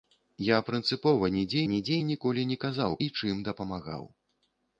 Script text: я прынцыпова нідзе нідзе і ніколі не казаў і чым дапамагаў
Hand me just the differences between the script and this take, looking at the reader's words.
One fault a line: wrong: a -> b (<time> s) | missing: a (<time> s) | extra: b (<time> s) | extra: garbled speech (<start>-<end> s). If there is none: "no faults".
no faults